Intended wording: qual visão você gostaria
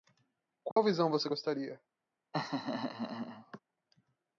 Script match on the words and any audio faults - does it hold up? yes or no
no